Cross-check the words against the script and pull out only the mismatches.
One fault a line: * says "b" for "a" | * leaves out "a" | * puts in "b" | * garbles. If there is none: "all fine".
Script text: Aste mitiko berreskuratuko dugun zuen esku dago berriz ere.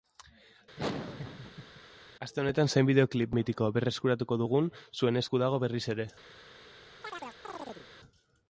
* puts in "honetan zein bideoklip"